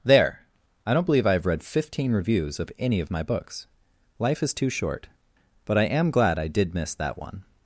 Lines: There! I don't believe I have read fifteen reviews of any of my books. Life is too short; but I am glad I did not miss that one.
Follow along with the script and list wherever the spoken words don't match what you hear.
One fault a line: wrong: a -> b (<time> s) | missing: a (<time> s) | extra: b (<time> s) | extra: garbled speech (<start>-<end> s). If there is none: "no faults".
missing: not (6.7 s)